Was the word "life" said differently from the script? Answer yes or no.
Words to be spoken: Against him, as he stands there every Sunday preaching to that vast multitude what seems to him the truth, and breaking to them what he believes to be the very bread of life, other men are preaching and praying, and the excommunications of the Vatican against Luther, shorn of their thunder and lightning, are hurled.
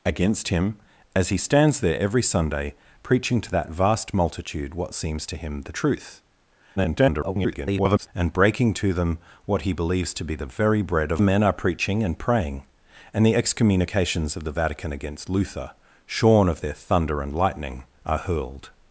yes